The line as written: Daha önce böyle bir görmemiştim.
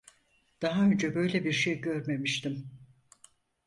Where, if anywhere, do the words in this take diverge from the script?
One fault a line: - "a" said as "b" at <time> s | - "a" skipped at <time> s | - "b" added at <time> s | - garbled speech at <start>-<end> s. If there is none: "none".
- "şey" added at 1.5 s